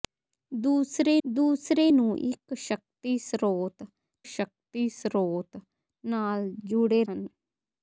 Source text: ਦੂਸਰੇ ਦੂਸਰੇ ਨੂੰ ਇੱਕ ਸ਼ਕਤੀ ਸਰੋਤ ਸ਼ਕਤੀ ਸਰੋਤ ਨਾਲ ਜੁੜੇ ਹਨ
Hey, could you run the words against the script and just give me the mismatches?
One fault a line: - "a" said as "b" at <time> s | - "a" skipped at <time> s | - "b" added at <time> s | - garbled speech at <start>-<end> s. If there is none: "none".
none